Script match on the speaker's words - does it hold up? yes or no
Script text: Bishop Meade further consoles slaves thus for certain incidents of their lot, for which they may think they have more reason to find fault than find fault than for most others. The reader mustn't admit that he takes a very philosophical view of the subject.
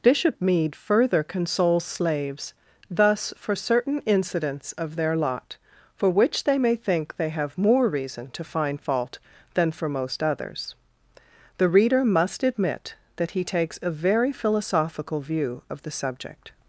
no